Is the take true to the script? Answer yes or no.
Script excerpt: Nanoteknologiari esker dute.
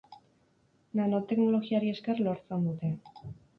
no